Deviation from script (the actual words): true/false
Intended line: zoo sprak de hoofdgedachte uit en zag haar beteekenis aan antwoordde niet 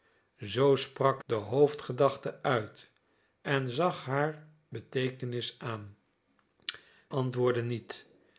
false